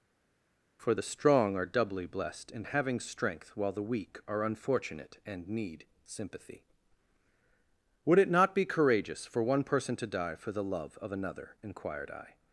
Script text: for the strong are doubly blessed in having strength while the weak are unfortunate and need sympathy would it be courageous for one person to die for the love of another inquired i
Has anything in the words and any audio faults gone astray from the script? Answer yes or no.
yes